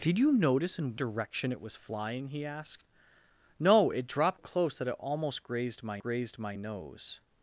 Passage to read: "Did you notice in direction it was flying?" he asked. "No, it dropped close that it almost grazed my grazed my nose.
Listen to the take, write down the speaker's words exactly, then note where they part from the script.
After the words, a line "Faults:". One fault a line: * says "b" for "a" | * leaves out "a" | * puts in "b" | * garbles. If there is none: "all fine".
"Did you notice in direction it was flying?" he asked. "No, it dropped close that it almost grazed my grazed my nose.
Faults:
all fine